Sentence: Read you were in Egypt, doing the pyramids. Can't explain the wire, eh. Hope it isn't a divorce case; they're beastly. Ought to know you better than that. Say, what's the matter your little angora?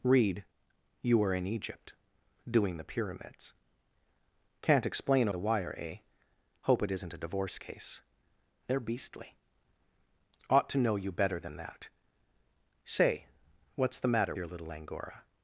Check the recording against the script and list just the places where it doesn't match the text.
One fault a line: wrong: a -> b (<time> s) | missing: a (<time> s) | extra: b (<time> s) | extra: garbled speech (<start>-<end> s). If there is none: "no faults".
no faults